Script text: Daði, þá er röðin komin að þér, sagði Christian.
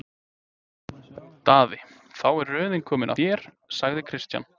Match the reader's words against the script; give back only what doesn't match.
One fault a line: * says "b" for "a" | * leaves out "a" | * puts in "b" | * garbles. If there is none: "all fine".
* leaves out "að"